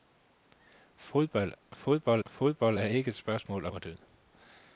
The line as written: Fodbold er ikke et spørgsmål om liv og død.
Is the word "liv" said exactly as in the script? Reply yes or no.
no